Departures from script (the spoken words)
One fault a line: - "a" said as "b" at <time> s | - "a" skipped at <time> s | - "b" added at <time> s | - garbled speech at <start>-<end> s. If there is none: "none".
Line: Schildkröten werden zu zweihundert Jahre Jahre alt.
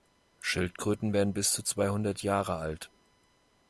- "bis" added at 1.3 s
- "Jahre" skipped at 2.6 s